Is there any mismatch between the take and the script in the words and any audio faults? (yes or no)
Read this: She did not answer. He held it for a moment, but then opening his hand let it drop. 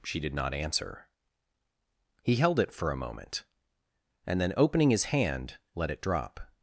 yes